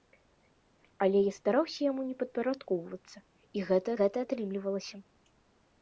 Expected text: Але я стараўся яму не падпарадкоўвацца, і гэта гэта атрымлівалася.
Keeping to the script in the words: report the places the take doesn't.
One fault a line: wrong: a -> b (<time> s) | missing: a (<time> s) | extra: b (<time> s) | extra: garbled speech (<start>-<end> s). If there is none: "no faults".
no faults